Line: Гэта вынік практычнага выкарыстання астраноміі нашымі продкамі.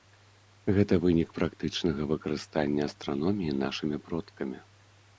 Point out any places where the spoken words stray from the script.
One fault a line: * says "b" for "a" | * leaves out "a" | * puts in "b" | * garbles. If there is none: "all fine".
all fine